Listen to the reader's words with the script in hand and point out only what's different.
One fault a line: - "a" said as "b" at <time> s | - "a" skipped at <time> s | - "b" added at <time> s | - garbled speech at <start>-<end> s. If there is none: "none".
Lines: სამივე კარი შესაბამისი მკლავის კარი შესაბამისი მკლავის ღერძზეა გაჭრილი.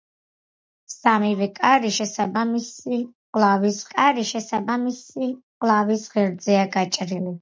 none